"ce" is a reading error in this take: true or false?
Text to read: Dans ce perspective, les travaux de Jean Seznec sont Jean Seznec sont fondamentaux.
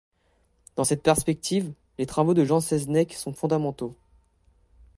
true